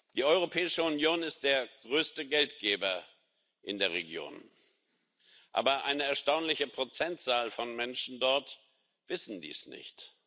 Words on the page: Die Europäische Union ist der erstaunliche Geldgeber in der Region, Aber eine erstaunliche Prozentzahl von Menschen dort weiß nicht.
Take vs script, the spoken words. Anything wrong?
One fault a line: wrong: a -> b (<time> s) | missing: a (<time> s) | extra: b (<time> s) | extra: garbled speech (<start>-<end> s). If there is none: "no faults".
wrong: erstaunliche -> größte (1.8 s)
extra: dies (9.4 s)